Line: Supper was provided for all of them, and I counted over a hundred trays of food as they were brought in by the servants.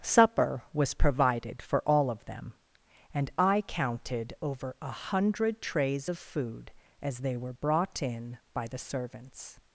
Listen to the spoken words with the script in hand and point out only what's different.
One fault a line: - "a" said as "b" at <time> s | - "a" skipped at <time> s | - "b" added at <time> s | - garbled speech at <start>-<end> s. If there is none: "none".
none